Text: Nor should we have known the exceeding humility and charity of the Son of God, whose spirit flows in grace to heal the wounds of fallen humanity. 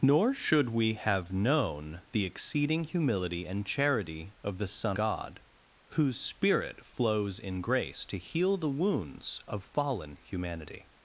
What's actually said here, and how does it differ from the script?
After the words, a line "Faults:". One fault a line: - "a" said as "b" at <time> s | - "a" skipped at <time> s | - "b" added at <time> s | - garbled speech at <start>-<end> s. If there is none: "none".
Nor should we have known the exceeding humility and charity of the Son God, whose spirit flows in grace to heal the wounds of fallen humanity.
Faults:
- "of" skipped at 5.0 s